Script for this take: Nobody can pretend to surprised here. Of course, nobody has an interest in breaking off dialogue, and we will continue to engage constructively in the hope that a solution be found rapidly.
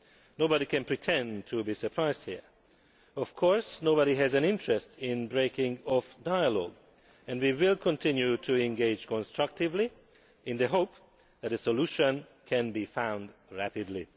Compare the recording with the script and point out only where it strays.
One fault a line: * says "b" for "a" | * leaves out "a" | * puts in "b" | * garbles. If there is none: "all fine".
* puts in "be"
* puts in "can"